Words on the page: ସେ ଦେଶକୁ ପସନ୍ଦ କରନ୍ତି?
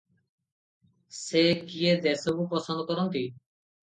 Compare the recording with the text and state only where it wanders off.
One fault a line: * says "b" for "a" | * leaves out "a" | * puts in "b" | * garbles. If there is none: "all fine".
* puts in "କିଏ"